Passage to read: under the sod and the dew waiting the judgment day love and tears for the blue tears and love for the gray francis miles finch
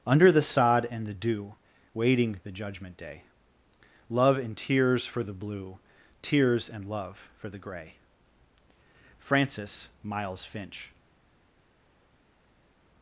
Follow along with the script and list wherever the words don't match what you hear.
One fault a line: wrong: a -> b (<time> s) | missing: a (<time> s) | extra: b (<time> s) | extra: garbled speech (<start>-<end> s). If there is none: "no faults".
no faults